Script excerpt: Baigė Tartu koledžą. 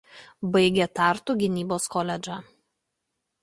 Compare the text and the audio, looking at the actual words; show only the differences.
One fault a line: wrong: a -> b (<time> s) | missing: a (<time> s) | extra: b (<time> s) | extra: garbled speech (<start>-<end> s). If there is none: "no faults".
extra: gynybos (1.4 s)